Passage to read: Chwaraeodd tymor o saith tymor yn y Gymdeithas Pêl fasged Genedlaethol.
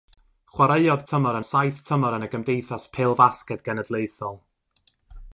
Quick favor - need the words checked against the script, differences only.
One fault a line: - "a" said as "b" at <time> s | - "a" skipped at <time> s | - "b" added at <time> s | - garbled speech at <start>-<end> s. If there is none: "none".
none